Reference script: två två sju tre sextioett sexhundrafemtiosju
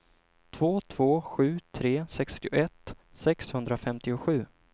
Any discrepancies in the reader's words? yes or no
no